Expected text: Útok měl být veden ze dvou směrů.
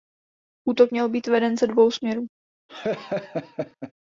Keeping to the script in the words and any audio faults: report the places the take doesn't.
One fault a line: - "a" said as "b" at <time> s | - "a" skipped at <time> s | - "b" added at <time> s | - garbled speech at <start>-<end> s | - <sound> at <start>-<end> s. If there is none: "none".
- laugh at 2.7-3.9 s